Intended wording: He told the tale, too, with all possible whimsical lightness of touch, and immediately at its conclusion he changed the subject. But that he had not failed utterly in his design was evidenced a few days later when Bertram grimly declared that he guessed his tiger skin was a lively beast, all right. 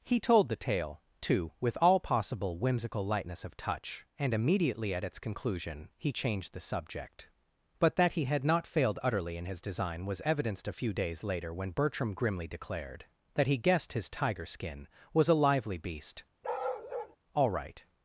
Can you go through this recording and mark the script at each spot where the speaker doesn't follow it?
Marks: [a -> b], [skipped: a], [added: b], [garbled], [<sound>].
He told the tale, too, with all possible whimsical lightness of touch, and immediately at its conclusion he changed the subject. But that he had not failed utterly in his design was evidenced a few days later when Bertram grimly declared that he guessed his tiger skin was a lively beast, [bark] all right.